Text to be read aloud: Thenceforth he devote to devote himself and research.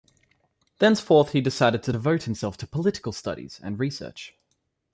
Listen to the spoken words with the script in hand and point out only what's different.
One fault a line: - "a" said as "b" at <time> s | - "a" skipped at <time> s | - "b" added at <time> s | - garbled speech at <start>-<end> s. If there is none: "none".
- "devote" said as "decided" at 1.4 s
- "to political studies" added at 2.5 s